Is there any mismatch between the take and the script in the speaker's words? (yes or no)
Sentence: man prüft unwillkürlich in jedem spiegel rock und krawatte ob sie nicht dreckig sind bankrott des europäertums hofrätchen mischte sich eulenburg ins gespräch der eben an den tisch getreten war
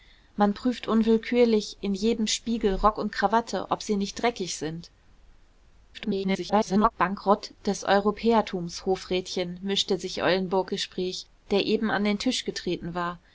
yes